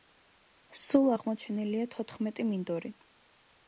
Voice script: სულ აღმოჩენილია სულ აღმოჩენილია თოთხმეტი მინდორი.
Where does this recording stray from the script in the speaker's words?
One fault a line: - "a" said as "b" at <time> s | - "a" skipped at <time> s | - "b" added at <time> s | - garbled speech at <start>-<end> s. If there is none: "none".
- "სულ აღმოჩენილია" skipped at 1.9 s